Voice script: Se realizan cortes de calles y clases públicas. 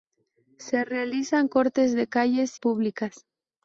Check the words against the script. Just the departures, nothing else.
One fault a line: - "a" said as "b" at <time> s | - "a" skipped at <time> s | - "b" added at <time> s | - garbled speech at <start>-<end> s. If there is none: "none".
- "y clases" skipped at 2.6 s